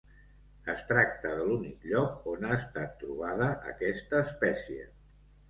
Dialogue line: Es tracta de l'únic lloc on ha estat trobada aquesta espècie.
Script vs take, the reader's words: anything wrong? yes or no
no